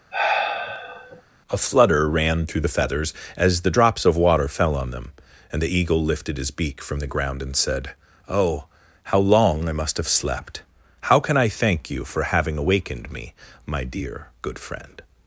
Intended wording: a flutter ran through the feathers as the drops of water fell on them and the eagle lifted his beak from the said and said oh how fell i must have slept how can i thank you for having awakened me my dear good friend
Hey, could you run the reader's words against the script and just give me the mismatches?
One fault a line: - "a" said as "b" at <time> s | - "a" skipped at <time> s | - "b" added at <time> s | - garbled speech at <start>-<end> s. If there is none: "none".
- "said" said as "ground" at 7.1 s
- "fell" said as "long" at 9.2 s